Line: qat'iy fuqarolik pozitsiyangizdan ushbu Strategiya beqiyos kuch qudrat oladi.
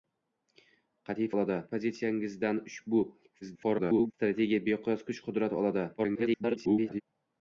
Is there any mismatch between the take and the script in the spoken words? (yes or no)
yes